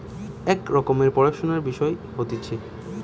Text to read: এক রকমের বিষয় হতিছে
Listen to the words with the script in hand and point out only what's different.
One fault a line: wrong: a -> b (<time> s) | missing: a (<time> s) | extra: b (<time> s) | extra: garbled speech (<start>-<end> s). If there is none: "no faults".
extra: পড়াশুনার (1.1 s)